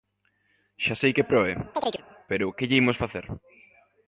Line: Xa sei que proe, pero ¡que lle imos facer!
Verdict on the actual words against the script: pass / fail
pass